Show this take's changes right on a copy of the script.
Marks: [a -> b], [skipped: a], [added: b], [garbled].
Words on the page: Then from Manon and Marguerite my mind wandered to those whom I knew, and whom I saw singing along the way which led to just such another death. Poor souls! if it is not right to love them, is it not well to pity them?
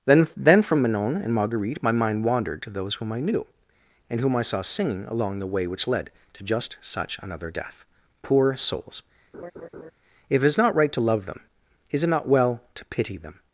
Then [added: then] from Manon and Marguerite my mind wandered to those whom I knew, and whom I saw singing along the way which led to just such another death. Poor souls! if it is not right to love them, is it not well to pity them?